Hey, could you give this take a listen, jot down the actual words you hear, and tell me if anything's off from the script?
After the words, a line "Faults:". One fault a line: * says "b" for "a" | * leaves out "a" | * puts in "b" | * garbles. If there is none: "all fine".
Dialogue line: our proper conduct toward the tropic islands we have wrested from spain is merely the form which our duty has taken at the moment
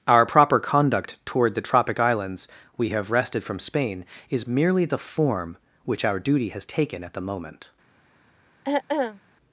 our proper conduct toward the tropic islands we have wrested from spain is merely the form which our duty has taken at the moment
Faults:
all fine